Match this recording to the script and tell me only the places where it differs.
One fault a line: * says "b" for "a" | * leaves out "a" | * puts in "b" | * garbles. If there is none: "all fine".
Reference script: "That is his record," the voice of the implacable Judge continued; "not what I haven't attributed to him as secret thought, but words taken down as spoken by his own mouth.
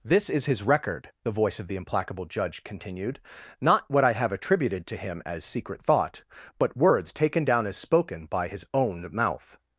* says "This" for "That"
* says "have" for "haven't"